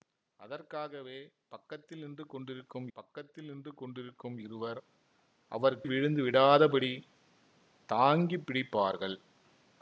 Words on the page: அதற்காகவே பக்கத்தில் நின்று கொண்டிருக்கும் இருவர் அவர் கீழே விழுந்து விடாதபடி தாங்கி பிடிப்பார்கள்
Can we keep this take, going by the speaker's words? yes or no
no